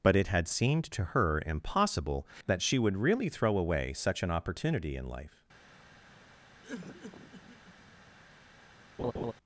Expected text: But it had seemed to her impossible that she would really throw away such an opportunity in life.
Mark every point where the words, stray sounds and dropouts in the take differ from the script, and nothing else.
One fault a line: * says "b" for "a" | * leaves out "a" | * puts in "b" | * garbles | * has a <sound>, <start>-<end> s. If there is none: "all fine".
* has a cough, 6.6-7.9 s
* has a laugh, 9.0-9.3 s